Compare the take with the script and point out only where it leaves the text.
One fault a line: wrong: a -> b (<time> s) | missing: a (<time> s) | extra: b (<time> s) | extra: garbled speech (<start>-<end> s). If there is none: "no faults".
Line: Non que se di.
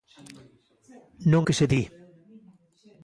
no faults